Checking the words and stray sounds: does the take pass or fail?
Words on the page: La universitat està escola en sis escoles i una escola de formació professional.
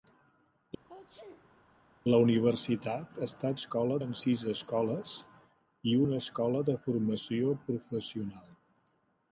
fail